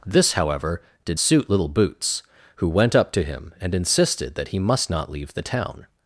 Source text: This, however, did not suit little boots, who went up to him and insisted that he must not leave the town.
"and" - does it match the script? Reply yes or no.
yes